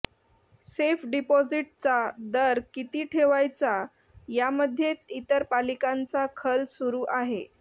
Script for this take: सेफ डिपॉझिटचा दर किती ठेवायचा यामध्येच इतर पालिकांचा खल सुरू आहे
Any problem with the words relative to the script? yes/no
no